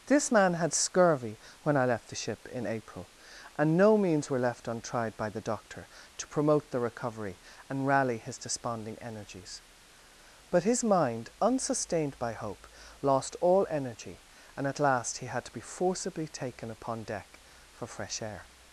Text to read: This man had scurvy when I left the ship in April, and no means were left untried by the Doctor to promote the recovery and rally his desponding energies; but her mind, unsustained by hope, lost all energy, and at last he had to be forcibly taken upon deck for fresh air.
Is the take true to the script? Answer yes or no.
no